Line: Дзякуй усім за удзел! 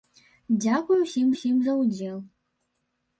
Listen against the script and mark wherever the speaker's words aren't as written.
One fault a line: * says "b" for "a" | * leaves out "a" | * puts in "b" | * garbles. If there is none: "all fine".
* puts in "усім"